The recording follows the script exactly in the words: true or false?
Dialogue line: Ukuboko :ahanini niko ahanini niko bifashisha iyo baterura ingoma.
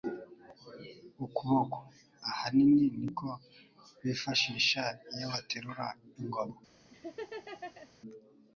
false